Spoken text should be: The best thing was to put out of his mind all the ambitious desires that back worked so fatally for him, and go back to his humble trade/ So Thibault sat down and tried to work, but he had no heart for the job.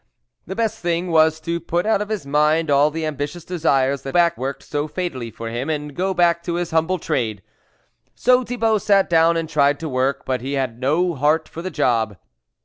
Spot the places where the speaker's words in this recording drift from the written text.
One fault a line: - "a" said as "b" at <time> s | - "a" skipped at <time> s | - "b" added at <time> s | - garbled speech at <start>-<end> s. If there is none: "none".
none